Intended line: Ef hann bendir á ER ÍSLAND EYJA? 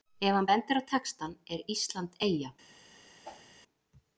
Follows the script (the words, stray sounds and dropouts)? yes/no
no